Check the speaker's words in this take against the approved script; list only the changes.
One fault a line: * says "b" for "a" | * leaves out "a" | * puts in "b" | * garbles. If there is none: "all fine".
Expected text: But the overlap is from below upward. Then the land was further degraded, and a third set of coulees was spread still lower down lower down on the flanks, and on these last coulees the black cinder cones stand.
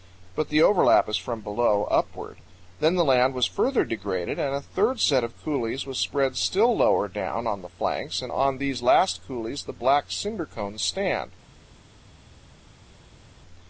* leaves out "lower down"